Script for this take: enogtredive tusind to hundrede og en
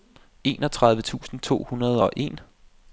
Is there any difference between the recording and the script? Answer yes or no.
no